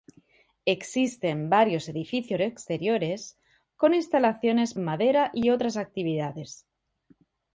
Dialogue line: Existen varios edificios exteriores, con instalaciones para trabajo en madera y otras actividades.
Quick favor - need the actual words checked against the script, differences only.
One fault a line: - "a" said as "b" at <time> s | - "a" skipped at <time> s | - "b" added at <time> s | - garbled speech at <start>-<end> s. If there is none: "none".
- "para trabajo" skipped at 4.7 s